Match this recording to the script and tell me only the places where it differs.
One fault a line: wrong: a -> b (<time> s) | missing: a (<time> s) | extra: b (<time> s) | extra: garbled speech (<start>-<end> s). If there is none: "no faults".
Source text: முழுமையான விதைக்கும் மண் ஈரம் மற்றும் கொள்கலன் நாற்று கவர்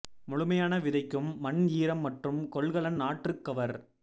no faults